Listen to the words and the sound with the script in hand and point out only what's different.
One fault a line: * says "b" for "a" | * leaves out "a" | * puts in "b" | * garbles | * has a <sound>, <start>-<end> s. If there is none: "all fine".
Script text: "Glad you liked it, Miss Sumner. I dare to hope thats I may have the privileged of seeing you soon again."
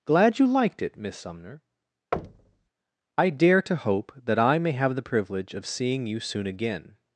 * has a thud, 2.1-2.7 s
* says "that" for "thats"
* says "privilege" for "privileged"